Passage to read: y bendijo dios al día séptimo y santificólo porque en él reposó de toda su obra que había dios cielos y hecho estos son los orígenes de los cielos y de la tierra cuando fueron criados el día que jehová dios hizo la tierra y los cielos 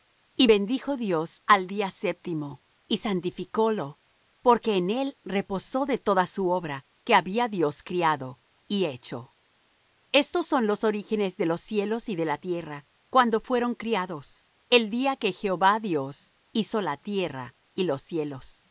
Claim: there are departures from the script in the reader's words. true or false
true